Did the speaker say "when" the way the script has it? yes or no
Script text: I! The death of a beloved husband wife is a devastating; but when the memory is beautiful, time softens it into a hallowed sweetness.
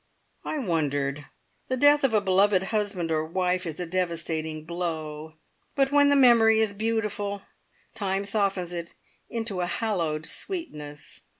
yes